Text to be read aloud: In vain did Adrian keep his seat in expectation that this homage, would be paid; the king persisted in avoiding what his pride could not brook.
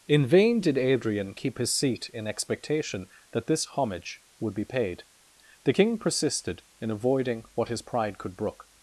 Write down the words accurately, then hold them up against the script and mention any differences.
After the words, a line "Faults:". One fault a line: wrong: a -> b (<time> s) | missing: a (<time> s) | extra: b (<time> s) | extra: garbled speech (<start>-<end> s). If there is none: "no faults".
In vain did Adrian keep his seat in expectation that this homage, would be paid; the king persisted in avoiding what his pride could brook.
Faults:
missing: not (8.4 s)